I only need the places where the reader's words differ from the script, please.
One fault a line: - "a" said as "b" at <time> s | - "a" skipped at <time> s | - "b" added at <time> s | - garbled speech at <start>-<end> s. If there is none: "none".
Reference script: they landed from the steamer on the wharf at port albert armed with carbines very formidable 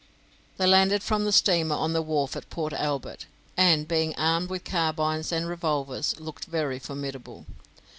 - "and being" added at 3.5 s
- "and revolvers looked" added at 5.3 s